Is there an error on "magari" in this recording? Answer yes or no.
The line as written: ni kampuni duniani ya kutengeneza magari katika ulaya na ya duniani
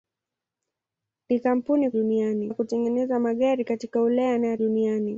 no